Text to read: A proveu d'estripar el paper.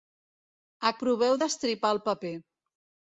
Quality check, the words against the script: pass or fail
pass